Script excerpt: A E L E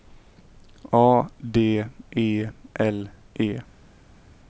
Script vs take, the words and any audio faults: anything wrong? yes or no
yes